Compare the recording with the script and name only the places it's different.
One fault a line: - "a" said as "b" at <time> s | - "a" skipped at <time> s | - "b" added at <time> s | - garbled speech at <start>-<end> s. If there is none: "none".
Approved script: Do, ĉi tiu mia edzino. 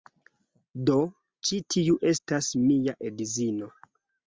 - "estas" added at 2.1 s